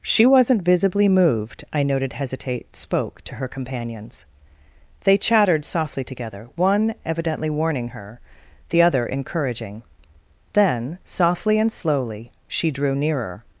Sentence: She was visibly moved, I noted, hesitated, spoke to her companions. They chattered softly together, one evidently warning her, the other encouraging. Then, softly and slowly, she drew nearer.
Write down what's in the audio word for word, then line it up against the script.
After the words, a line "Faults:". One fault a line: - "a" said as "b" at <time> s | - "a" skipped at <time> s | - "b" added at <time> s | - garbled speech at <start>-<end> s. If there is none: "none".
She wasn't visibly moved, I noted, hesitate, spoke to her companions. They chattered softly together, one evidently warning her, the other encouraging. Then, softly and slowly, she drew nearer.
Faults:
- "was" said as "wasn't" at 0.2 s
- "hesitated" said as "hesitate" at 2.1 s